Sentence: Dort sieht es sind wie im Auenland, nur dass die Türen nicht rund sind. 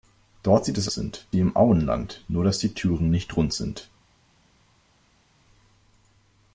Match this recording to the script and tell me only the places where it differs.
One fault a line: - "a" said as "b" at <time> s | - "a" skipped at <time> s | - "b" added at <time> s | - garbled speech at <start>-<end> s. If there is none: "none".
none